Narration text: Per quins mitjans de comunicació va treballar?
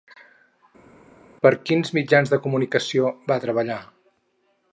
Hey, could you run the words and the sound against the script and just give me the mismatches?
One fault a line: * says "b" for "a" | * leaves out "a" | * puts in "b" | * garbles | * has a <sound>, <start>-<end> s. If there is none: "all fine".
all fine